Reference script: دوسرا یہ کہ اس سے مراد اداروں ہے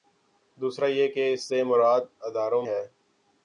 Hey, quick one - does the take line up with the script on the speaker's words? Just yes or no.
yes